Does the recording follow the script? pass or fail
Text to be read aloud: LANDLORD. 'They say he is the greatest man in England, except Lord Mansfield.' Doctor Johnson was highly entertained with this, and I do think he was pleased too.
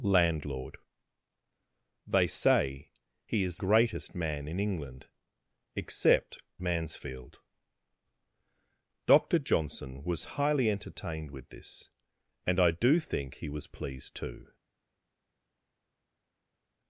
fail